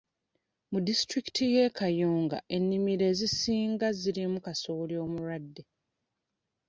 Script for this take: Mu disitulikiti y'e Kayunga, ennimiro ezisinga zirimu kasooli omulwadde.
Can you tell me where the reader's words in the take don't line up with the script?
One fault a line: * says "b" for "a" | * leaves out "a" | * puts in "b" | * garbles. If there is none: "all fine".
all fine